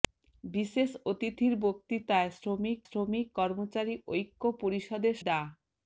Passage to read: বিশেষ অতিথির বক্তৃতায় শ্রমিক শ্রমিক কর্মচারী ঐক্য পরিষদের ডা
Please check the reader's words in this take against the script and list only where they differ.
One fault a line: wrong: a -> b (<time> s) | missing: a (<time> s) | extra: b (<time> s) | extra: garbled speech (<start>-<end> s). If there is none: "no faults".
no faults